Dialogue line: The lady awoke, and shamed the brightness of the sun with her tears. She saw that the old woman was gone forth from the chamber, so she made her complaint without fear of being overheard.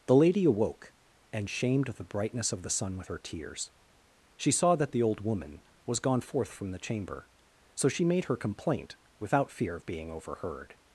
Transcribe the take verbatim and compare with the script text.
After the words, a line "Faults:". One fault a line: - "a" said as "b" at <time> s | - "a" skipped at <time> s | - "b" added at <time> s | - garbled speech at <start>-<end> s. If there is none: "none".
The lady awoke, and shamed the brightness of the sun with her tears. She saw that the old woman was gone forth from the chamber, so she made her complaint without fear of being overheard.
Faults:
none